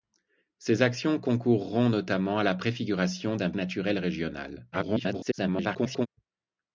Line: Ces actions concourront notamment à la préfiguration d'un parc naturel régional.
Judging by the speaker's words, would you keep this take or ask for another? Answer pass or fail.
fail